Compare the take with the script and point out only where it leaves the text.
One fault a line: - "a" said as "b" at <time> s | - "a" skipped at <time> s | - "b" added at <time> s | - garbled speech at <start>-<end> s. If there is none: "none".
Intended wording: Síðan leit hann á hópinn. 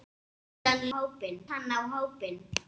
- "leit" said as "hópinn" at 0.9 s